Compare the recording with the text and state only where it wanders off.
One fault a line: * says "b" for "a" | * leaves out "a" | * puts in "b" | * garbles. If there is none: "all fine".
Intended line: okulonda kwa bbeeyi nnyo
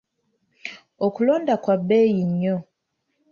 all fine